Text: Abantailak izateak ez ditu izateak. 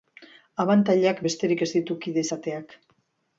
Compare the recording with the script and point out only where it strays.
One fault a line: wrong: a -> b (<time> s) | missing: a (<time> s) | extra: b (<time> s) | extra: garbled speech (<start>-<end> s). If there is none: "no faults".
wrong: izateak -> besterik (1.3 s)
extra: kide (2.1 s)